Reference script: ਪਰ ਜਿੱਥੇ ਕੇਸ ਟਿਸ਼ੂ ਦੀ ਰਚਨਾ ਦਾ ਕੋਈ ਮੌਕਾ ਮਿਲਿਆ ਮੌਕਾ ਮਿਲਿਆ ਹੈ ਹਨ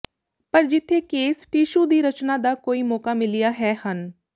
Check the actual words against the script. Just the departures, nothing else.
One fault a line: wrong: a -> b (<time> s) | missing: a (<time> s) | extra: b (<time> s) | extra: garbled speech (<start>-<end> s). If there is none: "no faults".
missing: ਮੌਕਾ ਮਿਲਿਆ (3.5 s)